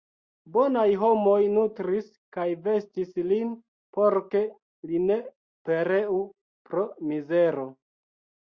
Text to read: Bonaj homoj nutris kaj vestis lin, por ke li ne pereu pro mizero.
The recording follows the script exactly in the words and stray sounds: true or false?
true